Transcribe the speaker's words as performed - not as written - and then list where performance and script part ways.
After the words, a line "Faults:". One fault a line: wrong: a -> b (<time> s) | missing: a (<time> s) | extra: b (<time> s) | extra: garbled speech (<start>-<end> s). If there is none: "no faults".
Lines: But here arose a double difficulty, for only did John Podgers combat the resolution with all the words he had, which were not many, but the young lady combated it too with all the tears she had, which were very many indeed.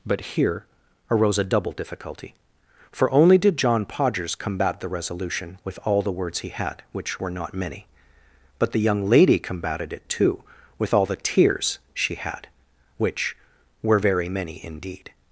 But here arose a double difficulty, for only did John Podgers combat the resolution with all the words he had, which were not many, but the young lady combated it too with all the tears she had, which were very many indeed.
Faults:
no faults